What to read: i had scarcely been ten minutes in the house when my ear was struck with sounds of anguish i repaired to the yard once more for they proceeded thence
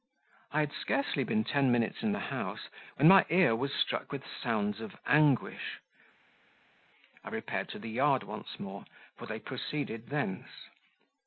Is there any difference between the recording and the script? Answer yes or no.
no